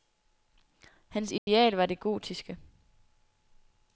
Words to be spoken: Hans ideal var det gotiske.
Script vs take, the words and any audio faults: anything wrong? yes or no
yes